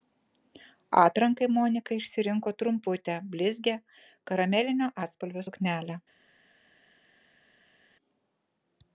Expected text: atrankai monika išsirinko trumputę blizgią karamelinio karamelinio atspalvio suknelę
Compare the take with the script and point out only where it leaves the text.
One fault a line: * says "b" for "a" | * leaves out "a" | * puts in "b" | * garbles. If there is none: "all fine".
* leaves out "karamelinio"